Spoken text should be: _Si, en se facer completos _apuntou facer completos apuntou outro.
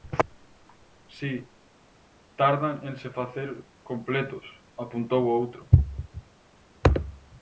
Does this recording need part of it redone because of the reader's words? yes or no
yes